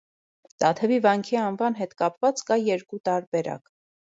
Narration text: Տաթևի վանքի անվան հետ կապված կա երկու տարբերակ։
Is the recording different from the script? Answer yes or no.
no